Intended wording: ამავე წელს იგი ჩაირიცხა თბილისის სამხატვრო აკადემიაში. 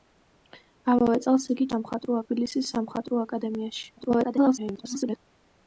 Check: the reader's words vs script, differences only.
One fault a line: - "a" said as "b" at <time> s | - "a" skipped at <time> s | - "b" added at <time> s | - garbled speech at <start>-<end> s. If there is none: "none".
- "ჩაირიცხა" said as "სამხატვრო" at 1.7 s
- garbled speech at 4.0-5.2 s